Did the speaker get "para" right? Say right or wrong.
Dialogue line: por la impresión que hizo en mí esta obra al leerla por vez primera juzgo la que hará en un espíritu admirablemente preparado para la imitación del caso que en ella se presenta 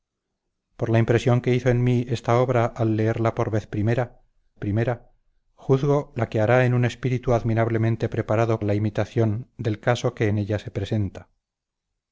wrong